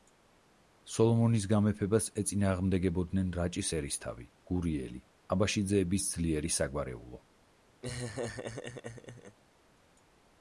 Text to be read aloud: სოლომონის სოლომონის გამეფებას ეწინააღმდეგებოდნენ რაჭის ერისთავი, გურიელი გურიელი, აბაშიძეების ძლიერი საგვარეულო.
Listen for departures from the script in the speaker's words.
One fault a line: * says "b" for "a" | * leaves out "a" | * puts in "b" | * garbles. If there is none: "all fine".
* leaves out "სოლომონის"
* leaves out "გურიელი"